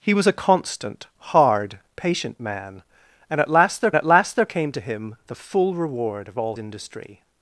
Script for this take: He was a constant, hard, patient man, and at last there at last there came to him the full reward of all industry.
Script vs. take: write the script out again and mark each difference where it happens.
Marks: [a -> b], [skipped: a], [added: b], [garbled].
He was a constant, hard, patient man, and at last there at last there came to him the full reward of all industry.